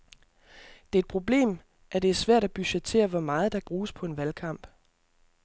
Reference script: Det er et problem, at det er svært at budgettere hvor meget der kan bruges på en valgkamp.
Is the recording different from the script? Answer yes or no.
yes